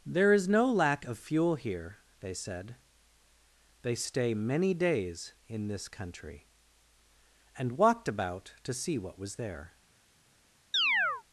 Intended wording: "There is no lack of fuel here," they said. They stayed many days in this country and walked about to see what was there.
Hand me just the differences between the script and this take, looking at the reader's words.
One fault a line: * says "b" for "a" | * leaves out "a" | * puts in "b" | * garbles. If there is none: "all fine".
* says "stay" for "stayed"